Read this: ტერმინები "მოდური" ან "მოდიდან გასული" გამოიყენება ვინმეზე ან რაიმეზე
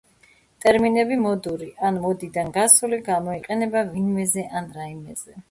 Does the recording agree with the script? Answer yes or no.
yes